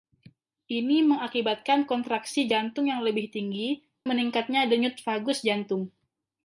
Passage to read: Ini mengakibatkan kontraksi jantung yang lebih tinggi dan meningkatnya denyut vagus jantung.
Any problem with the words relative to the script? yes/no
yes